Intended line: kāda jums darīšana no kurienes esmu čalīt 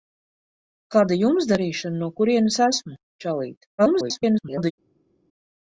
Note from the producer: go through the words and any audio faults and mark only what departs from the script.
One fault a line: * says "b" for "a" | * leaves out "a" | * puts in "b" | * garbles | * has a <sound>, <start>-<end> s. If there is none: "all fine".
* garbles